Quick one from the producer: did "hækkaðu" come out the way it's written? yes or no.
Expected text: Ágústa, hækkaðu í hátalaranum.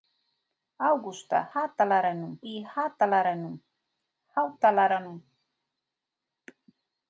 no